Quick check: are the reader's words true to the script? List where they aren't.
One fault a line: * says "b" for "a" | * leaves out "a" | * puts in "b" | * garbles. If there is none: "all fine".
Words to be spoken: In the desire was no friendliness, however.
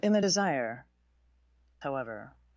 * leaves out "was no friendliness"